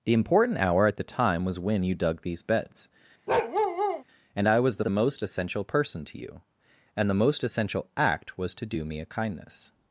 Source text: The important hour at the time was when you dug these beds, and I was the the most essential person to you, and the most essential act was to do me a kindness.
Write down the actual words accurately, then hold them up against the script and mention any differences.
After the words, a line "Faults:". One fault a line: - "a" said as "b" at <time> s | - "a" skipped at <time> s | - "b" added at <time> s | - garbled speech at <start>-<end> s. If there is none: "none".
The important hour at the time was when you dug these beds, and I was the the most essential person to you, and the most essential act was to do me a kindness.
Faults:
none